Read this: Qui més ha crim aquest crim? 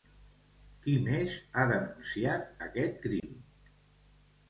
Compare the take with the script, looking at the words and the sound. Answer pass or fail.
fail